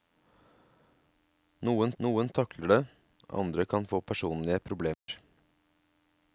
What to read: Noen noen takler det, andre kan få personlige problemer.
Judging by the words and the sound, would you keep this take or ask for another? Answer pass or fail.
fail